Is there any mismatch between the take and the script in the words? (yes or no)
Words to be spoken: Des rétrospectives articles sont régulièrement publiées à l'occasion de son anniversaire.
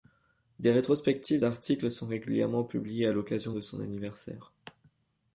no